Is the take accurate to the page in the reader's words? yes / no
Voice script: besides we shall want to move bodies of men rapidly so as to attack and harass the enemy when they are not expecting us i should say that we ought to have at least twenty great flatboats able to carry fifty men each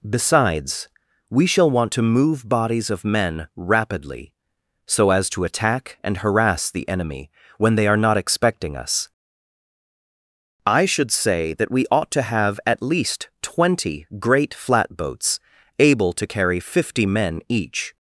yes